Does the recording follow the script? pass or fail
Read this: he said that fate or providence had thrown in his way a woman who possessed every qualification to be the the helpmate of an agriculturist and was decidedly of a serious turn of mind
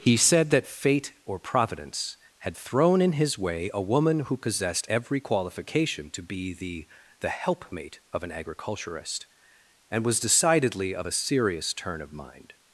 pass